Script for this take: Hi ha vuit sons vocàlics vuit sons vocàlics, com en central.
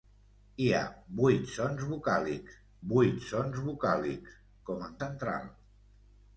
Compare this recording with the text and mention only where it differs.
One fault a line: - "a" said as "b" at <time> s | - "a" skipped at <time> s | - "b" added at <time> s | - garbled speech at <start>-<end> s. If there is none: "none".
none